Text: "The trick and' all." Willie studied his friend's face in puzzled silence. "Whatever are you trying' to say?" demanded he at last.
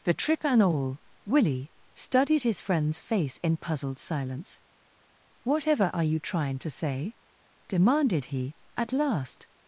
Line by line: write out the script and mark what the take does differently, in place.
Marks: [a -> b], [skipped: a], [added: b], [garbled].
"The trick and' all." Willie studied his friend's face in puzzled silence. "Whatever are you trying' to say?" demanded he at last.